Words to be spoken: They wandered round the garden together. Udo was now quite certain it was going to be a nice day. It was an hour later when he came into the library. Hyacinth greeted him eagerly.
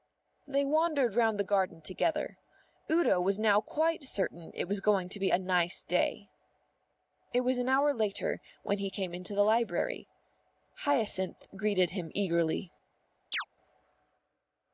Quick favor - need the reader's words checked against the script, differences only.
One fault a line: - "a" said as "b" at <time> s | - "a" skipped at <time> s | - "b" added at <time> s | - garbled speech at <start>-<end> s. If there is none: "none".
none